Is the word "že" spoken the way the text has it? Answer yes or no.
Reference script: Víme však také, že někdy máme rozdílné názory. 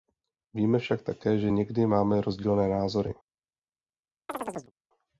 yes